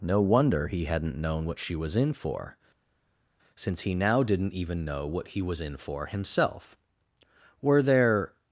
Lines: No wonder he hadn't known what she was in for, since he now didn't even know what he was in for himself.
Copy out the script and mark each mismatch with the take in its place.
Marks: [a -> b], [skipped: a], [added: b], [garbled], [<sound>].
No wonder he hadn't known what she was in for, since he now didn't even know what he was in for himself. [added: Were there]